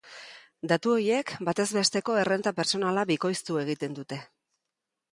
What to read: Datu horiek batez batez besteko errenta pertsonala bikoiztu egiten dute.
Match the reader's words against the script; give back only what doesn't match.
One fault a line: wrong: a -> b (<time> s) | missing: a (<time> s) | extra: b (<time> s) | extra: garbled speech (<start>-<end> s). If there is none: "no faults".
missing: batez (1.7 s)